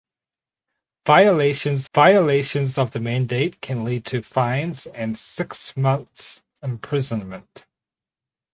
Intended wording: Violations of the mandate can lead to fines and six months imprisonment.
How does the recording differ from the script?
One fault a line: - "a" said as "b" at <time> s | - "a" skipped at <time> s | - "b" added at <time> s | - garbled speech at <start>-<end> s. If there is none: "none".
- "violations" added at 1.9 s